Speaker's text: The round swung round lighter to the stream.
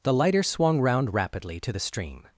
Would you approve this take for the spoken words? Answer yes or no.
no